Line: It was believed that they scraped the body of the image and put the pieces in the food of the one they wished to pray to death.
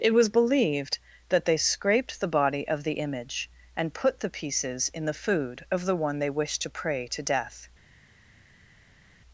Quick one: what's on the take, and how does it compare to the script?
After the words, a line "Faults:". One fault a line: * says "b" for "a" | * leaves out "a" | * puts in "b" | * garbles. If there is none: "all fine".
It was believed that they scraped the body of the image and put the pieces in the food of the one they wished to pray to death.
Faults:
all fine